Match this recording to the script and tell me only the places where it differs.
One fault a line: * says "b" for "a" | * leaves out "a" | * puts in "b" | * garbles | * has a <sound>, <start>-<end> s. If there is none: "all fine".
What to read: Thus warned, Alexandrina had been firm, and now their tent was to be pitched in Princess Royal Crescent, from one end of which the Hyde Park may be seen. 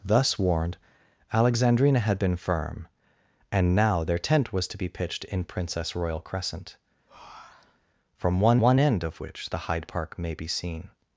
* has a breath, 7.1-7.9 s
* puts in "one"